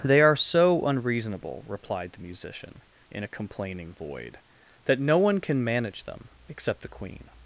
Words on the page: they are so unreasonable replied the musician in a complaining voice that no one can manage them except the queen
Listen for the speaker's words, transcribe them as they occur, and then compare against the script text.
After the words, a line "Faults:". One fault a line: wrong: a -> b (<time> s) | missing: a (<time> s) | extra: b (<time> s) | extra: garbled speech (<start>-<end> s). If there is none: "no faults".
they are so unreasonable replied the musician in a complaining void that no one can manage them except the queen
Faults:
wrong: voice -> void (3.9 s)